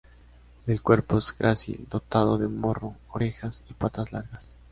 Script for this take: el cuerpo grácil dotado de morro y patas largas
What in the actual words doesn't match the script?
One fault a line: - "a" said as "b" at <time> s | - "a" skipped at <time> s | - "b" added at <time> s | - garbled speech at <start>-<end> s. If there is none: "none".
- "es" added at 1.2 s
- "orejas" added at 3.1 s